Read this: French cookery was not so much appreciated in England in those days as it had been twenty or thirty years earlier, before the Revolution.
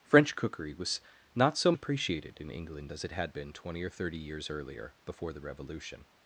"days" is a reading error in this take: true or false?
true